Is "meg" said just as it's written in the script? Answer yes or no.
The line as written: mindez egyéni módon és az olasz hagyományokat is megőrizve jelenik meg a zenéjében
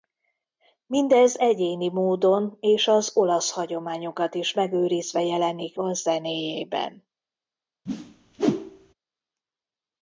no